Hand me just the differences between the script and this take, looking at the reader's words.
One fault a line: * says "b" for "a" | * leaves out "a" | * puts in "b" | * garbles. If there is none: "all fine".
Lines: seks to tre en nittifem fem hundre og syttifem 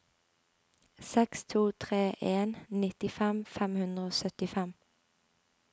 all fine